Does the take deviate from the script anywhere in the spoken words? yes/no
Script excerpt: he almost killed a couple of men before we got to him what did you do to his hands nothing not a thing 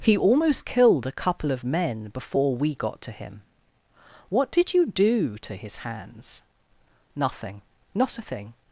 no